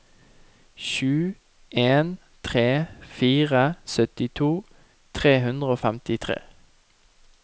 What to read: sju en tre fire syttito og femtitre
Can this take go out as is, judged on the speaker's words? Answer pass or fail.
fail